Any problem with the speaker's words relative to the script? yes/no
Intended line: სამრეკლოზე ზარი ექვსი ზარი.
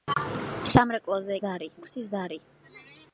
no